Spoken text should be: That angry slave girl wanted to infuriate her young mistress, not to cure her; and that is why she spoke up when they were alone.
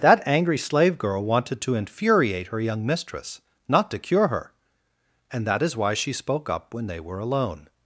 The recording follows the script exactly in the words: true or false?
true